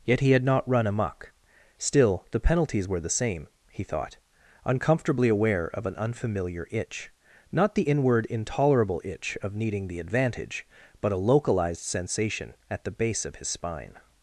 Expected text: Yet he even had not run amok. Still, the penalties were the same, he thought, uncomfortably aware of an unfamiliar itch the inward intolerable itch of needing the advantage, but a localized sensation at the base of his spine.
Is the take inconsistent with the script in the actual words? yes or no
yes